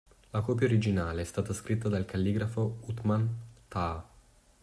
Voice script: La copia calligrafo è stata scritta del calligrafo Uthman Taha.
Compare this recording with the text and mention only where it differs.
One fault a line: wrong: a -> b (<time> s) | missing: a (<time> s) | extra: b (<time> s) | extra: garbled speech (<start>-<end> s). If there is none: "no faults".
wrong: calligrafo -> originale (0.7 s)
wrong: del -> dal (1.9 s)